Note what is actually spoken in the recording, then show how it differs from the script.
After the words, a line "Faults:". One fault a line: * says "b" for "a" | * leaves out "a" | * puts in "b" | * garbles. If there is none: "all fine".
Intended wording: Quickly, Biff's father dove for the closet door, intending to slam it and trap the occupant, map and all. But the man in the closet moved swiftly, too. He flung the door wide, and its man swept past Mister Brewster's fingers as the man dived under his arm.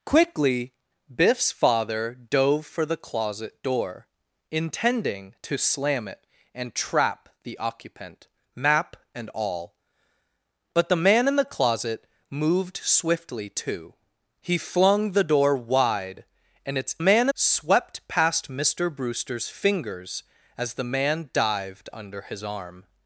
Quickly, Biff's father dove for the closet door, intending to slam it and trap the occupant, map and all. But the man in the closet moved swiftly, too. He flung the door wide, and its man swept past Mister Brewster's fingers as the man dived under his arm.
Faults:
all fine